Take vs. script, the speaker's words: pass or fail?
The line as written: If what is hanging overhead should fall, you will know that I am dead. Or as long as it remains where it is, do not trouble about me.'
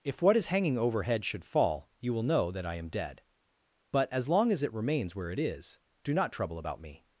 fail